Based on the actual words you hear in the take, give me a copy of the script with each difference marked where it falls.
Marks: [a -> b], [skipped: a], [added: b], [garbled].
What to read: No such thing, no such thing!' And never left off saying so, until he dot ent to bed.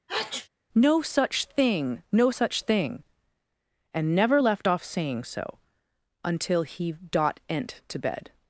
No such thing, no such thing!' And never left off saying so, until he dot ent to bed.